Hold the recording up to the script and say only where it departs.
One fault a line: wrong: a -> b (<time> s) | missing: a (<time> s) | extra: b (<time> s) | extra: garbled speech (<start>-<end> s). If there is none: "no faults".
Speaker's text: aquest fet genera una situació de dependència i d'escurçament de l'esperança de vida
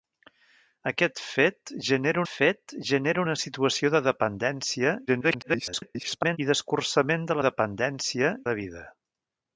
extra: fet genera (2.3 s)
extra: garbled speech (5.1-6.4 s)
wrong: l'esperança -> dependència (7.5 s)